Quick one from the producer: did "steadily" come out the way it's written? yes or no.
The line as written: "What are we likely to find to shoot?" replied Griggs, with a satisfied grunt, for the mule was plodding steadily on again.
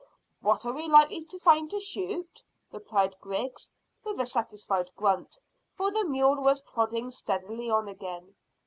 yes